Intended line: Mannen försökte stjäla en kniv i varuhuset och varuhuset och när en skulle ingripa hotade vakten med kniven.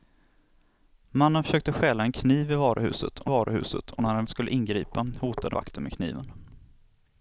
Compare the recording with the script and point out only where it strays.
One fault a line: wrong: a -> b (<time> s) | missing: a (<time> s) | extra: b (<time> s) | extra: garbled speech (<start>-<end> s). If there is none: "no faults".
no faults